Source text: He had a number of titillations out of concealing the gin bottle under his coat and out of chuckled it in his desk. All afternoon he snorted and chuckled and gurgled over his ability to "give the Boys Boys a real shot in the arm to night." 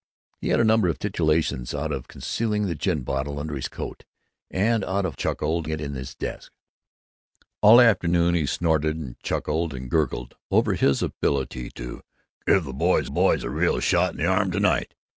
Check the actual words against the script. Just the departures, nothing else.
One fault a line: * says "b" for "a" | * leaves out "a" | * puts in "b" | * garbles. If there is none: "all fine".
all fine